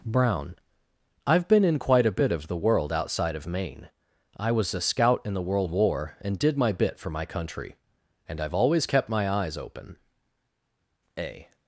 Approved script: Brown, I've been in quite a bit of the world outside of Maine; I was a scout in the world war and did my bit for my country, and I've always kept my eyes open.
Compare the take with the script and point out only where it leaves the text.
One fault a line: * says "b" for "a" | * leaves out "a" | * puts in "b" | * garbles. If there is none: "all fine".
* puts in "A"